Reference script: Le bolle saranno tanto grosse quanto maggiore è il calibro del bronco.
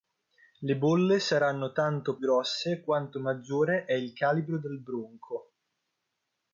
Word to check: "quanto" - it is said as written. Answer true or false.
true